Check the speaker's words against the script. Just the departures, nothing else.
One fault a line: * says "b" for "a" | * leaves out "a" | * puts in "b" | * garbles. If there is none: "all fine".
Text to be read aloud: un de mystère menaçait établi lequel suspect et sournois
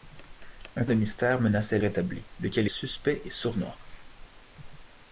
all fine